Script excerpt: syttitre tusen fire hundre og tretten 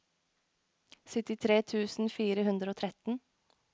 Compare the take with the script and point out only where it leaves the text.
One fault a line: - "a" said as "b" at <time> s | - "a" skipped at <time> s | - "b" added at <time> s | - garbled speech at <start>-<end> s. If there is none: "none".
none